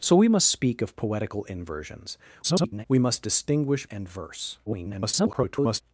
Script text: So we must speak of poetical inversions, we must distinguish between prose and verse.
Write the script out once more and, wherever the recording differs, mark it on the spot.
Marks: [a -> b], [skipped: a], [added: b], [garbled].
So we must speak of poetical inversions, [garbled] we must distinguish [skipped: between prose] and verse. [garbled]